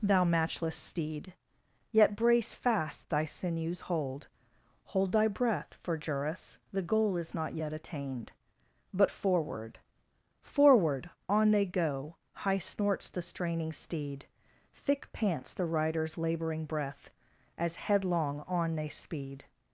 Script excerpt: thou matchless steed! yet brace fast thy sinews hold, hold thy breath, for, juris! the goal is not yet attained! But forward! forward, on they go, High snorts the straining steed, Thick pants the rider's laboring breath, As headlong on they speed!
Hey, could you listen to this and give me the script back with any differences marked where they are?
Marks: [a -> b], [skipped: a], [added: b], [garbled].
thou matchless steed! yet brace fast thy sinews hold, hold thy breath, for, juris! the goal is not yet attained! But forward! forward, on they go, High snorts the straining steed, Thick pants the rider's laboring breath, As headlong on they speed!